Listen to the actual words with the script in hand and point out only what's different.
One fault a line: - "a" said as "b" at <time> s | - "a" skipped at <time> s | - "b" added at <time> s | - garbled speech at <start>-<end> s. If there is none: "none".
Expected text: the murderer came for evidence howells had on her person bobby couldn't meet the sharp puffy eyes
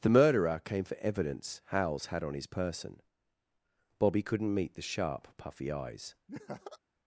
- "her" said as "his" at 2.3 s